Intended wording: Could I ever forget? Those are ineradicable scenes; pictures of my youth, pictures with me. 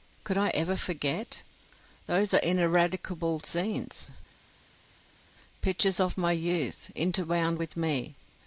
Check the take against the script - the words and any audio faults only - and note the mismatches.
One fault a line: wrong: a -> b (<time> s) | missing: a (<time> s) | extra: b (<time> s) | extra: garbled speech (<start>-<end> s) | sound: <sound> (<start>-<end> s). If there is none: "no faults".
wrong: pictures -> interwound (6.9 s)